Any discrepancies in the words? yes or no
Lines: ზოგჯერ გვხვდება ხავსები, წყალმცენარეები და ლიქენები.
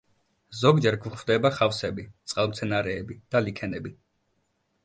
no